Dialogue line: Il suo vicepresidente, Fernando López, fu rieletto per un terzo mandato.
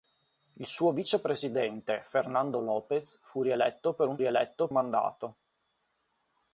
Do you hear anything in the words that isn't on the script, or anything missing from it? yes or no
yes